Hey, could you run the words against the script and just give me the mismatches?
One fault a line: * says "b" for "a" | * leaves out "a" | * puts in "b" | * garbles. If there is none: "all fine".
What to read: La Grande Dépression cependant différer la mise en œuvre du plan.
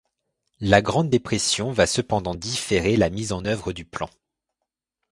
* puts in "va"